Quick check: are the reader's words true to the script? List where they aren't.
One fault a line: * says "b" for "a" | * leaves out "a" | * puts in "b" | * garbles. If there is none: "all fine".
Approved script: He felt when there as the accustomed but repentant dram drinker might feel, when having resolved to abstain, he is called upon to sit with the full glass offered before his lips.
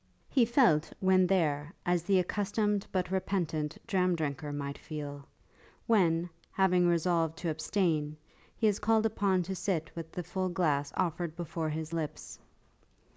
all fine